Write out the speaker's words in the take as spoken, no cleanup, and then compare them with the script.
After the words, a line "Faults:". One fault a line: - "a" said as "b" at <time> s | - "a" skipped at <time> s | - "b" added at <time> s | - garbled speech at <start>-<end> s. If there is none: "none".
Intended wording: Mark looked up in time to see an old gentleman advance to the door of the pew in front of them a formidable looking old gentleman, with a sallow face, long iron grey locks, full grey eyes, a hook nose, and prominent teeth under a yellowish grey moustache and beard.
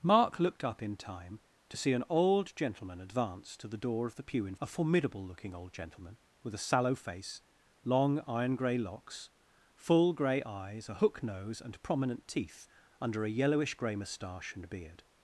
Mark looked up in time to see an old gentleman advance to the door of the pew in a formidable looking old gentleman, with a sallow face, long iron grey locks, full grey eyes, a hook nose, and prominent teeth under a yellowish grey moustache and beard.
Faults:
- "front of them" skipped at 4.5 s